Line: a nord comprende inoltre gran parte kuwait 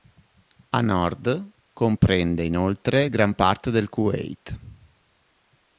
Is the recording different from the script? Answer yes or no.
yes